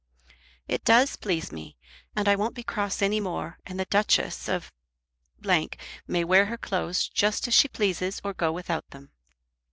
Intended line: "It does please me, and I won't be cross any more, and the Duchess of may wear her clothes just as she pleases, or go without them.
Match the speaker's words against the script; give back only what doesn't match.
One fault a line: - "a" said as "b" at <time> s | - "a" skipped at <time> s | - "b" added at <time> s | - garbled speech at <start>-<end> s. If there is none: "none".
none